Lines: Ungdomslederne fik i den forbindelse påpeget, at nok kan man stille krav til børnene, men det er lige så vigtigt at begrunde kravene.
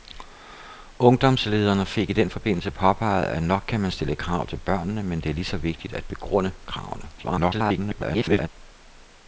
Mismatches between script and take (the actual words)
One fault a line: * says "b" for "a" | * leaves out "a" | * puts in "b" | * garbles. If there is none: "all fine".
* garbles